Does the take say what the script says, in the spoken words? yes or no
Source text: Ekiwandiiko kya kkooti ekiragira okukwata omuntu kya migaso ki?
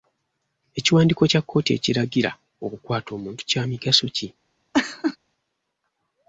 yes